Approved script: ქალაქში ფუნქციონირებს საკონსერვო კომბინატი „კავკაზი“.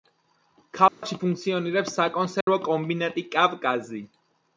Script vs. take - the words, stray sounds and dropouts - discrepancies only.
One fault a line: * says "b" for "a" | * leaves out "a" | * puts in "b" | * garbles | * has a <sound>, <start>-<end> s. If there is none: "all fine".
* has a dropout, 0.9-1.0 s
* has a dropout, 2.4-2.5 s